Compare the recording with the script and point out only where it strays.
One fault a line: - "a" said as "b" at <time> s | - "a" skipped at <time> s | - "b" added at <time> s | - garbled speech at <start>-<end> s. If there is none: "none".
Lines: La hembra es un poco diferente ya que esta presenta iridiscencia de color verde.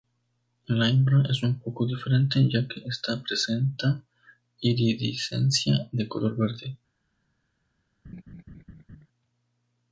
none